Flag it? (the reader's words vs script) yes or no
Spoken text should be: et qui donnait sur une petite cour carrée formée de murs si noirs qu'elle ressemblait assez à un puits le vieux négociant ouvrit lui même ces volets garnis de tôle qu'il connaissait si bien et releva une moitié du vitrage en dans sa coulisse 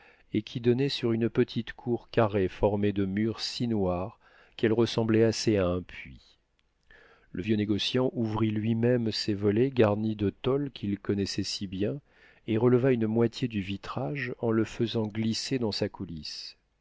yes